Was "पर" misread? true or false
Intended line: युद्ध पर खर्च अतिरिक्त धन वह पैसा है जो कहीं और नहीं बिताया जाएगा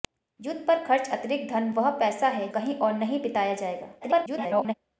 false